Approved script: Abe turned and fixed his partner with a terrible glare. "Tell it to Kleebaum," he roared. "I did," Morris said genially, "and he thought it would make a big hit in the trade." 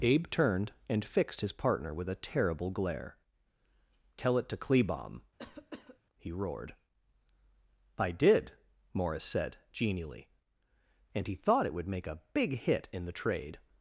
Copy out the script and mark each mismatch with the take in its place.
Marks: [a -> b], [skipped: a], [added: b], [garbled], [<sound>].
Abe turned and fixed his partner with a terrible glare. "Tell it to Kleebaum," [cough] he roared. "I did," Morris said genially, "and he thought it would make a big hit in the trade."